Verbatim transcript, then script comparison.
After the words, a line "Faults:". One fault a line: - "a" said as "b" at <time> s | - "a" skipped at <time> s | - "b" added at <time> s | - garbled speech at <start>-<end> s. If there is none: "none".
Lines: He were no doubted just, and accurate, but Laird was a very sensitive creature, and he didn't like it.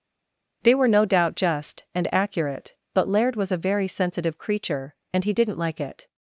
They were no doubt just, and accurate, but Laird was a very sensitive creature, and he didn't like it.
Faults:
- "He" said as "They" at 0.6 s
- "doubted" said as "doubt" at 1.1 s